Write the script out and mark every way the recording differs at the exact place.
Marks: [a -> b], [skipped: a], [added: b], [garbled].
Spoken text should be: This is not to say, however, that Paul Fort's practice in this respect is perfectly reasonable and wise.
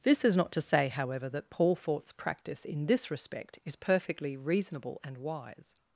This is not to say, however, that Paul Fort's practice in this respect is perfectly reasonable and wise.